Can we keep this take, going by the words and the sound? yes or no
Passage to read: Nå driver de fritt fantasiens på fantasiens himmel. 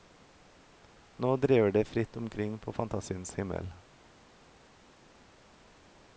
no